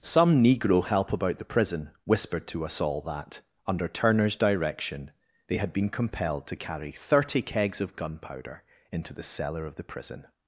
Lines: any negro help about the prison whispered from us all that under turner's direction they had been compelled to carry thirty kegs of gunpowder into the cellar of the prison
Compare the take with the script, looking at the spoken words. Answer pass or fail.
fail